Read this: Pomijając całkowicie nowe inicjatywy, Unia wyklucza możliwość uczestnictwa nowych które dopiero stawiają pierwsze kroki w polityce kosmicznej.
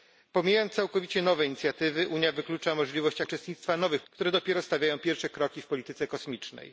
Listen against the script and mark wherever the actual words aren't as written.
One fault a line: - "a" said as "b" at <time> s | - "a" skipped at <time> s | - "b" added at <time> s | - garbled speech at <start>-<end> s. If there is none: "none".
none